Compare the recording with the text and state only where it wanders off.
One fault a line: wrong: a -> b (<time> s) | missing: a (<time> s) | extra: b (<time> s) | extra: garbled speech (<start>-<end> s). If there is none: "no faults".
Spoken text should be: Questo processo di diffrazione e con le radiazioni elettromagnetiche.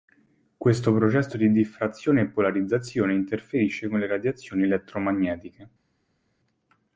extra: polarizzazione interferisce (2.3 s)